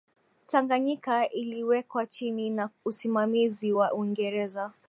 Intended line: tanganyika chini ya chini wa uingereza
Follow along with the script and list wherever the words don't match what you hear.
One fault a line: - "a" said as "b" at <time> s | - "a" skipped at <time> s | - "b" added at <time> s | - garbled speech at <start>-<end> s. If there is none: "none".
- "iliwekwa" added at 1.3 s
- "chini" said as "usimamizi" at 2.8 s